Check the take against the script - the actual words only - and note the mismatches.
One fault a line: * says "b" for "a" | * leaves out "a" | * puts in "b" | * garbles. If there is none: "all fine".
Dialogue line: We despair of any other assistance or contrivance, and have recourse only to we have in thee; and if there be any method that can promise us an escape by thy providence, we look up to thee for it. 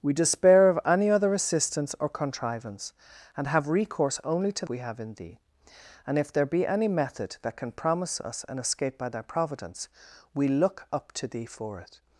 all fine